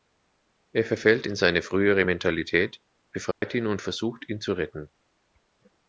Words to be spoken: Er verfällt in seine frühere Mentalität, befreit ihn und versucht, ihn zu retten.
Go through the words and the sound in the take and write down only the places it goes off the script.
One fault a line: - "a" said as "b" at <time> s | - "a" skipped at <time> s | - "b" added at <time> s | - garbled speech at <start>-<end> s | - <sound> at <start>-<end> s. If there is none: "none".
- dropout at 3.3-3.4 s